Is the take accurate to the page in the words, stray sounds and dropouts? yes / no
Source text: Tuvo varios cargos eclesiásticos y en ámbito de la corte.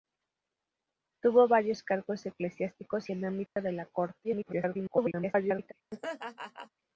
no